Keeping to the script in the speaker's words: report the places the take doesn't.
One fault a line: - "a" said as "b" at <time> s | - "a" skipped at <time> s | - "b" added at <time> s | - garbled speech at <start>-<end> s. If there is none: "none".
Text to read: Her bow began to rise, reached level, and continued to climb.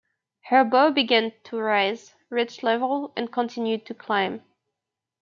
none